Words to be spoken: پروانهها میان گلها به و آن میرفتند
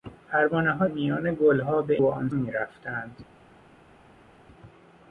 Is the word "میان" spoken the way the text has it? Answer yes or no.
yes